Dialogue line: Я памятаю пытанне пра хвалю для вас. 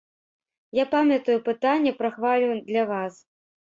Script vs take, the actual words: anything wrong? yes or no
no